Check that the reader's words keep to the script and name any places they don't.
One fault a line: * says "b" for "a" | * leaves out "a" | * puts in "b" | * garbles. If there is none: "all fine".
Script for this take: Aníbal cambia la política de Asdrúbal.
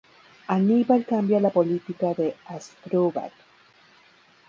all fine